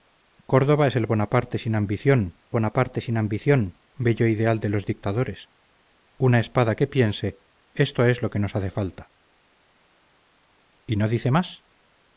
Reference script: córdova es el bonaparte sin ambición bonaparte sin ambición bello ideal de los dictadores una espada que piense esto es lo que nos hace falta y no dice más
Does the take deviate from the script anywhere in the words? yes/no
no